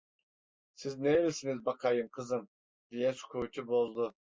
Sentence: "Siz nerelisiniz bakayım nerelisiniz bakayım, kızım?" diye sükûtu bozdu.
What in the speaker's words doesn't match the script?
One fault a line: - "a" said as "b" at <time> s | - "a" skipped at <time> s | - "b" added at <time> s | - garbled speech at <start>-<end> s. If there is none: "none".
- "nerelisiniz bakayım" skipped at 2.1 s